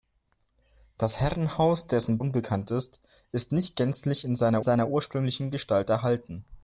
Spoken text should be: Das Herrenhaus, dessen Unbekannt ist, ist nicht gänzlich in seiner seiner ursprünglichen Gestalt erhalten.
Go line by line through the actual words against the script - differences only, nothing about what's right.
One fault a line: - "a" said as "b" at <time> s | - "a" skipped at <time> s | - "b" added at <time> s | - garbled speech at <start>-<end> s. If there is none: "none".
none